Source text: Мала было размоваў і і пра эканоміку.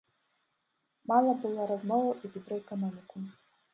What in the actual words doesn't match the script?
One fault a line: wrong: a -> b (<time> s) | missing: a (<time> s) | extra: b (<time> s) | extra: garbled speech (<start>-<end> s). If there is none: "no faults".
no faults